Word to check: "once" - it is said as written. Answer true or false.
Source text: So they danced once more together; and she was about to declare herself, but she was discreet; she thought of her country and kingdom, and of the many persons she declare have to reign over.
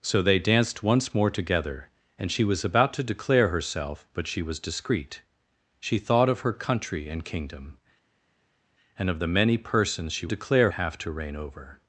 true